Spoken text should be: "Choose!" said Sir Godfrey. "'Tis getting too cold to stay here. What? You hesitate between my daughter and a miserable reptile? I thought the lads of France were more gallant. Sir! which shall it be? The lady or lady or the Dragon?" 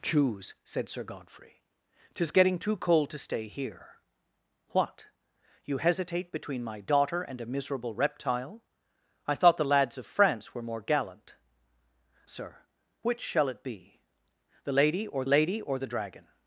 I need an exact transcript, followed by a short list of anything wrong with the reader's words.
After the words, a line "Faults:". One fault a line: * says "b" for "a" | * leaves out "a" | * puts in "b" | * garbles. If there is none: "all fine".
"Choose!" said Sir Godfrey. "'Tis getting too cold to stay here. What? You hesitate between my daughter and a miserable reptile? I thought the lads of France were more gallant. Sir! which shall it be? The lady or lady or the Dragon?"
Faults:
all fine